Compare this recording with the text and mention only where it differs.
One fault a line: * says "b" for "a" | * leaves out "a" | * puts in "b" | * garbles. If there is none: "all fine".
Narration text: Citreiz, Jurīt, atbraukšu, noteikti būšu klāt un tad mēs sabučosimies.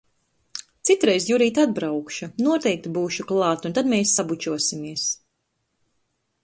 all fine